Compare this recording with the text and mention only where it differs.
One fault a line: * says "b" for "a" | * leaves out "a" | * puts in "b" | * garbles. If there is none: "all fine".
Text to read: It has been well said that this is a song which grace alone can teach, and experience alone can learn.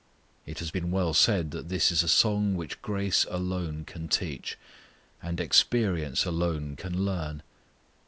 all fine